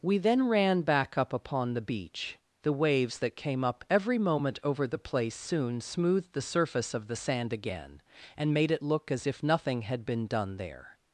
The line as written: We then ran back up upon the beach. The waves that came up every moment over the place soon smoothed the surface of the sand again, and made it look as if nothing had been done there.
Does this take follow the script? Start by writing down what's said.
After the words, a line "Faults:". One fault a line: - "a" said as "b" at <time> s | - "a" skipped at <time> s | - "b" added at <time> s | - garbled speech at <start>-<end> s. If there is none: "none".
We then ran back up upon the beach. The waves that came up every moment over the place soon smoothed the surface of the sand again, and made it look as if nothing had been done there.
Faults:
none